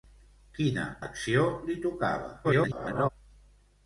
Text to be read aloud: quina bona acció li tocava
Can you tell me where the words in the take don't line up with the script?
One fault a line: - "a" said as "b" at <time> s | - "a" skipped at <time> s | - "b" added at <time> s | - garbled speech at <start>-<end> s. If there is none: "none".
- "bona" skipped at 0.8 s
- garbled speech at 2.4-3.1 s